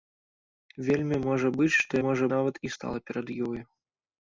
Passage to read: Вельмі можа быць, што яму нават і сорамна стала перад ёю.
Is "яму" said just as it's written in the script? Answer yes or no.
no